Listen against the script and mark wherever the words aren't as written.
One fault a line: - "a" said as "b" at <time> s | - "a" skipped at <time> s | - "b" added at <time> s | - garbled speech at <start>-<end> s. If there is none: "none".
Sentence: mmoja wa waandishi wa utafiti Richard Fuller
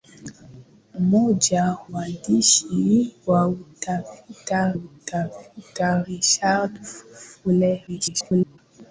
- "wa" skipped at 1.8 s
- "utafiti" added at 4.7 s
- garbled speech at 7.9-8.6 s